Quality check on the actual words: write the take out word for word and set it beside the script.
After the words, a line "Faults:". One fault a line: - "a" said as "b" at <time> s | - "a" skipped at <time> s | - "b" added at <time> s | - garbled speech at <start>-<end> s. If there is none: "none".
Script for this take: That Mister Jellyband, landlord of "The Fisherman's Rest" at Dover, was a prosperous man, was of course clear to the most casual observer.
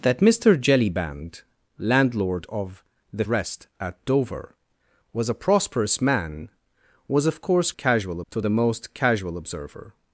That Mister Jellyband, landlord of "The Rest" at Dover, was a prosperous man, was of course casual to the most casual observer.
Faults:
- "Fisherman's" skipped at 3.2 s
- "clear" said as "casual" at 7.7 s